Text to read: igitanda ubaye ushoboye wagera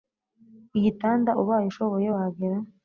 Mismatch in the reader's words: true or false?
false